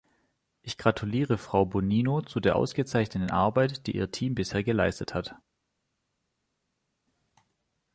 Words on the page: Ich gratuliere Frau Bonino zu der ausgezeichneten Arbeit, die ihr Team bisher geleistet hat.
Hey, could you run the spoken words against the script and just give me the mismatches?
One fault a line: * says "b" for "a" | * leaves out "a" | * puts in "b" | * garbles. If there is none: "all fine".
all fine